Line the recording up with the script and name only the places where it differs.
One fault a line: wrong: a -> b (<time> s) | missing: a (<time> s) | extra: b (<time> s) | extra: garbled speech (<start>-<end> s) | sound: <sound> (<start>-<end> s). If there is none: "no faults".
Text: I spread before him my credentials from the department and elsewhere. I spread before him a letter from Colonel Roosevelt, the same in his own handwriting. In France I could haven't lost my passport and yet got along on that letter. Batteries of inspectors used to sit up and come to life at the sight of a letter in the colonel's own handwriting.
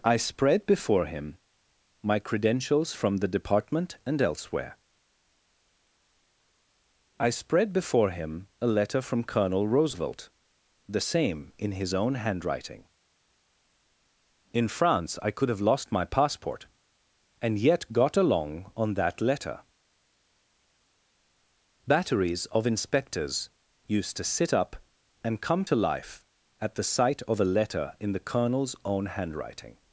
wrong: haven't -> have (15.5 s)